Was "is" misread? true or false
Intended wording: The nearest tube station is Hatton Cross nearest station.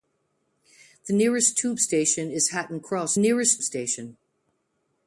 false